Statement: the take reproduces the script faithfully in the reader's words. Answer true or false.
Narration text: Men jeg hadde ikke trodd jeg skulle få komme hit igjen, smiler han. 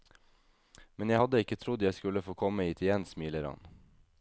true